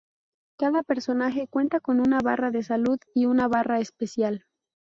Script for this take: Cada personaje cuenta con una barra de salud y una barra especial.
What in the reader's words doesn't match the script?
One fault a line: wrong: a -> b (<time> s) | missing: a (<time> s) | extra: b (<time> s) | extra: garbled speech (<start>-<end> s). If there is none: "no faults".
no faults